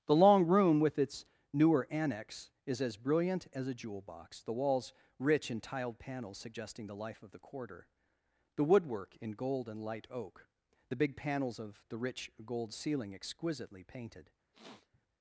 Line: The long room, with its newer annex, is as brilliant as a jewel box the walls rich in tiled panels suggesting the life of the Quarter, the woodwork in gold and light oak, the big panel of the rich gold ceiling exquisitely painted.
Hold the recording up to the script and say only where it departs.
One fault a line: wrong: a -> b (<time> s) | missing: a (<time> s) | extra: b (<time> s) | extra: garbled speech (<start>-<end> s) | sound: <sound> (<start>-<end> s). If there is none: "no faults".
wrong: panel -> panels (11.2 s)
sound: sniff (14.5-15.0 s)